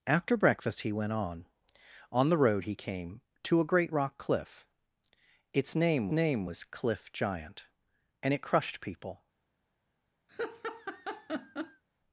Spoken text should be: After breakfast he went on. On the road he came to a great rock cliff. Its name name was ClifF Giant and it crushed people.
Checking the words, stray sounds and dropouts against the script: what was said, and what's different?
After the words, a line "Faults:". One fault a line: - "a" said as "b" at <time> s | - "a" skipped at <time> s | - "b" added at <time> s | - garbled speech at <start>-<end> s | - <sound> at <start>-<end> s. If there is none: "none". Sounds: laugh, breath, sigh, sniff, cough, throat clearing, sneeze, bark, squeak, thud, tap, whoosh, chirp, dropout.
After breakfast he went on. On the road he came to a great rock cliff. Its name name was ClifF Giant and it crushed people.
Faults:
- laugh at 10.3-11.8 s